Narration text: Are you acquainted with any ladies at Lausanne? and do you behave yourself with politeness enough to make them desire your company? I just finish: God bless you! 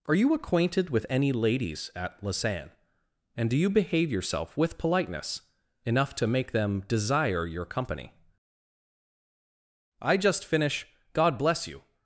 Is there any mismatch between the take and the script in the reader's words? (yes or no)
no